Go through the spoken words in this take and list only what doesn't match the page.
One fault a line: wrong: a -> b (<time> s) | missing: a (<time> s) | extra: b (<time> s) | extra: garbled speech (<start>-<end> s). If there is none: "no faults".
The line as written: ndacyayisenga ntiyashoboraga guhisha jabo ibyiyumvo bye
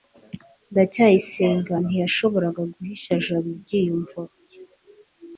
no faults